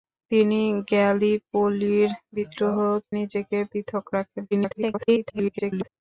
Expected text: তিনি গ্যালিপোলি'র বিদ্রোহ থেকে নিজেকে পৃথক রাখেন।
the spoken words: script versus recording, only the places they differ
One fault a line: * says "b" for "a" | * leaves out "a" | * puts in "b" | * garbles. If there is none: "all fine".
* leaves out "থেকে"
* garbles